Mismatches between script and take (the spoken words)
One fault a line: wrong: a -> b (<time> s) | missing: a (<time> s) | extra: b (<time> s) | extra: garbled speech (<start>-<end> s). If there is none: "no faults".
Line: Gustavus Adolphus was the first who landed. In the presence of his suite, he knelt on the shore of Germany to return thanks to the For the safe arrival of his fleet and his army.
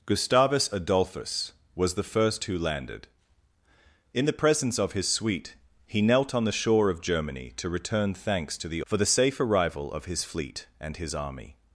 no faults